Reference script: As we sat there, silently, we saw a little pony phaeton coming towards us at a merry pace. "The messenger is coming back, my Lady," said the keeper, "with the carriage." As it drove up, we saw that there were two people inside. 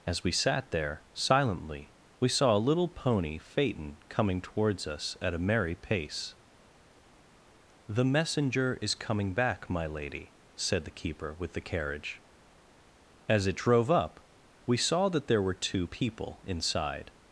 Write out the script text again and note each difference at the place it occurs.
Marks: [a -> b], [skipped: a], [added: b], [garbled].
As we sat there, silently, we saw a little pony phaeton coming towards us at a merry pace. "The messenger is coming back, my Lady," said the keeper, "with the carriage." As it drove up, we saw that there were two people inside.